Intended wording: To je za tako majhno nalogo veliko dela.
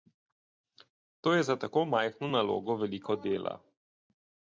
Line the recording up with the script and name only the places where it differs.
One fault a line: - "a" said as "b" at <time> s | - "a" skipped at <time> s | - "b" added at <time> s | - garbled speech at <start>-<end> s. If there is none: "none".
none